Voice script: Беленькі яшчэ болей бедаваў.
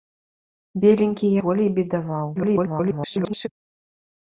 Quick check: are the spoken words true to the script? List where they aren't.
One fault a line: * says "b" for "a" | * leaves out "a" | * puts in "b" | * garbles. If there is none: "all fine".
* leaves out "яшчэ"
* garbles